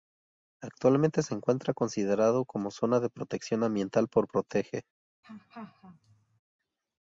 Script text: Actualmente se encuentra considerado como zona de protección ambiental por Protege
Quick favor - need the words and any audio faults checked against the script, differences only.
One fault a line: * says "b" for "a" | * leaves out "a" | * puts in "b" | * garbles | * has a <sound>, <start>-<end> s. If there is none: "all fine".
* has a laugh, 5.2-6.4 s